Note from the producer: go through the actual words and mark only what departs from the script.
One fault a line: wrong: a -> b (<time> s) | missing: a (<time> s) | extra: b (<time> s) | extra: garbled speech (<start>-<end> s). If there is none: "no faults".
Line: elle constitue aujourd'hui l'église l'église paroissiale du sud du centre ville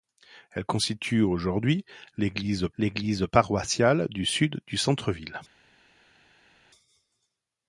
no faults